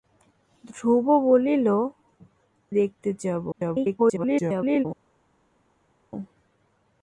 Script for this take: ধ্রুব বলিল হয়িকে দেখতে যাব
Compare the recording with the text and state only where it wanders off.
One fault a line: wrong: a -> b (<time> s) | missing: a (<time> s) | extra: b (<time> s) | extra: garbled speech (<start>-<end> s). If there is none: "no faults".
missing: হয়িকে (1.7 s)
extra: garbled speech (3.5-4.9 s)